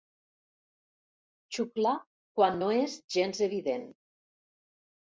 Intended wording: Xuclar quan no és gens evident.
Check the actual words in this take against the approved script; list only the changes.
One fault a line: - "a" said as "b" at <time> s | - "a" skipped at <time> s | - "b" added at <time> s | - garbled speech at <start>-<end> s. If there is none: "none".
none